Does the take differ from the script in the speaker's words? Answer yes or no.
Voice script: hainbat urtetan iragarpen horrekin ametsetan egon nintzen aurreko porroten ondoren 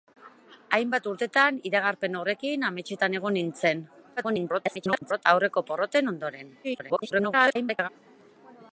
yes